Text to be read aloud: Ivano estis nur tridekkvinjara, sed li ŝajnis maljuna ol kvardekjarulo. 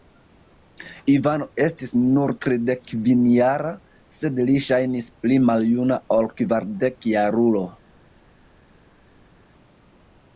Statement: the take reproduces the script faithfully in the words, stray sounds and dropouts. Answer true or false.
false